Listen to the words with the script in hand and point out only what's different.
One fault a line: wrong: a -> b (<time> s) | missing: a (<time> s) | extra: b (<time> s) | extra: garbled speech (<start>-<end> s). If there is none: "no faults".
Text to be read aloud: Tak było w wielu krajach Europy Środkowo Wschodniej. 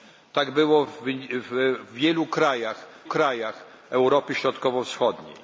extra: krajach (3.0 s)